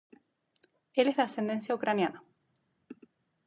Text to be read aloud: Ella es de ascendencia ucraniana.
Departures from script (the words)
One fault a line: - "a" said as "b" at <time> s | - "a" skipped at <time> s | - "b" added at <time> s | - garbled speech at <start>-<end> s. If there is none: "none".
- "Ella" said as "Él" at 0.9 s